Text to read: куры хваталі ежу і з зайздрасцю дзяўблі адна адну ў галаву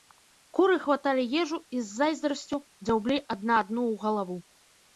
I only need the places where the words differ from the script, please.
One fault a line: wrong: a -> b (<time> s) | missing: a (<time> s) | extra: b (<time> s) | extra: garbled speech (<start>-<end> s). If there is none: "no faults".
no faults